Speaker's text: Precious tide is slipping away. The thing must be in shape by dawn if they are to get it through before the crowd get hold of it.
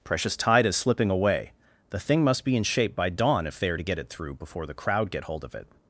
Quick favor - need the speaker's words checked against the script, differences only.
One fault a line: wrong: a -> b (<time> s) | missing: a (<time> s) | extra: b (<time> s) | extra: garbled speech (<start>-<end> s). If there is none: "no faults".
no faults